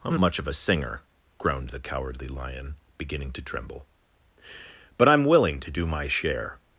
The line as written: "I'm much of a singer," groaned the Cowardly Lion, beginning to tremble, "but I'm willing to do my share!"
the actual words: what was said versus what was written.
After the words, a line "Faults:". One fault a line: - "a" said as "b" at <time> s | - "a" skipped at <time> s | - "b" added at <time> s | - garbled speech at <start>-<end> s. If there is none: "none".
"I'm much of a singer," groaned the Cowardly Lion, beginning to tremble, "but I'm willing to do my share!"
Faults:
none